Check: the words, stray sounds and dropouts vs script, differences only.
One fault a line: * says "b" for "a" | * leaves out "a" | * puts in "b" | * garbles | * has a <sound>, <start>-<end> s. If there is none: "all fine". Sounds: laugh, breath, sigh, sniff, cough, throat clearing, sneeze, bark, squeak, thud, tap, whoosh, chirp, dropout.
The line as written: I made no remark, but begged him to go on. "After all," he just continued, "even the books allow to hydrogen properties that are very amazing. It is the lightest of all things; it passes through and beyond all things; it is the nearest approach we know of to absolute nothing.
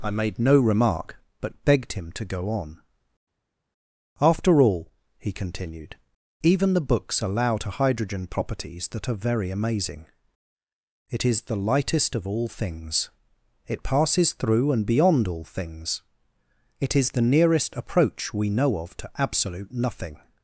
* leaves out "just"